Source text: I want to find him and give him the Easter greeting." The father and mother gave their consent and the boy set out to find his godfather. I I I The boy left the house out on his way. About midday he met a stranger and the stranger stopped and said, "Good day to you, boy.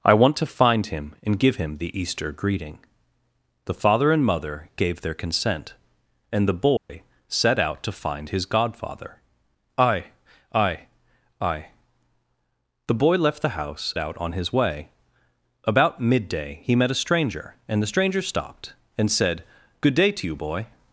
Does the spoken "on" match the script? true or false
true